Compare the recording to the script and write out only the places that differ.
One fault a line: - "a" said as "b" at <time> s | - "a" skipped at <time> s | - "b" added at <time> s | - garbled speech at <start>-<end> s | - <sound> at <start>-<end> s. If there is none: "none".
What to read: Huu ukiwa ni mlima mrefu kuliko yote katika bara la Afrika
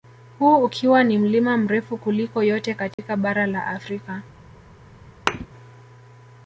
- dropout at 2.9-3.0 s
- thud at 5.3-5.5 s